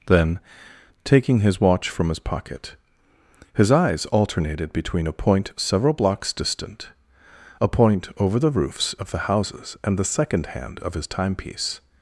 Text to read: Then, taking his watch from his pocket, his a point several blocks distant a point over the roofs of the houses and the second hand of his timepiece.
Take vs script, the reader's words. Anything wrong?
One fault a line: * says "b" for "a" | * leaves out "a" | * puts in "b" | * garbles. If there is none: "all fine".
* puts in "eyes alternated between"